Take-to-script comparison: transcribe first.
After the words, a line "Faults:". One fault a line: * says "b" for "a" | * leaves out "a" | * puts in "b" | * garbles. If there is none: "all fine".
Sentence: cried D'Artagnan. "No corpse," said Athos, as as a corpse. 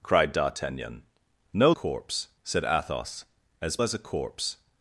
cried D'Artagnan. "No corpse," said Athos, as as a corpse.
Faults:
all fine